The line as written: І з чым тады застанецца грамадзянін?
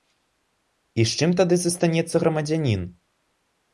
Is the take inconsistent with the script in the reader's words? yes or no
no